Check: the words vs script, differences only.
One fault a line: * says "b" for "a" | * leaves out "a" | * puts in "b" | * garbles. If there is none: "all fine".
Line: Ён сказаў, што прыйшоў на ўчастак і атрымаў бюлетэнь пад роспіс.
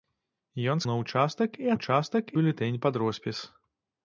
* leaves out "сказаў што прыйшоў"
* says "ўчастак" for "атрымаў"